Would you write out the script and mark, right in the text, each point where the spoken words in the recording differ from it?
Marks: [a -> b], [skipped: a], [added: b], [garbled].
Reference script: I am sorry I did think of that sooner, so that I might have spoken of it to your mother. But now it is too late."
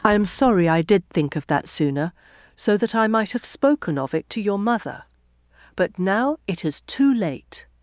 I am sorry I did think of that sooner, so that I might have spoken of it to your mother. But now it is too late."